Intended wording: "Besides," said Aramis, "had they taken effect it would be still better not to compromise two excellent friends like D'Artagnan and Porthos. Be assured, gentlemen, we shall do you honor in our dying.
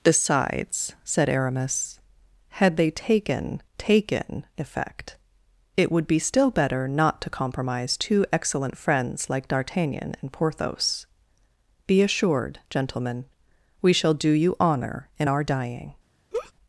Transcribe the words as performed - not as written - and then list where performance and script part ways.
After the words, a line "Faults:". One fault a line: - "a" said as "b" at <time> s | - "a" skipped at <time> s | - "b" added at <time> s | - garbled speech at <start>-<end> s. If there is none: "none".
"Besides," said Aramis, "had they taken taken effect it would be still better not to compromise two excellent friends like D'Artagnan and Porthos. Be assured, gentlemen, we shall do you honor in our dying.
Faults:
- "taken" added at 3.8 s